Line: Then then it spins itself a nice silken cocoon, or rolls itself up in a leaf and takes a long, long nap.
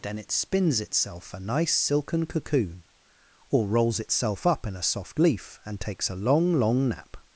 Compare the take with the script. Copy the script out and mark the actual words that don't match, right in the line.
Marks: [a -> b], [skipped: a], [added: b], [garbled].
Then [skipped: then] it spins itself a nice silken cocoon, or rolls itself up in a [added: soft] leaf and takes a long, long nap.